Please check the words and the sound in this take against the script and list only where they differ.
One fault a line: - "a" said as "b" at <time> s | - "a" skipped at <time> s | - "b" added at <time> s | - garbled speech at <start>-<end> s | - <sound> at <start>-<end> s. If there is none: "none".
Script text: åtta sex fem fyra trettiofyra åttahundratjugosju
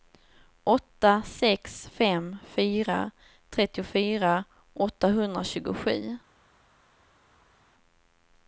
none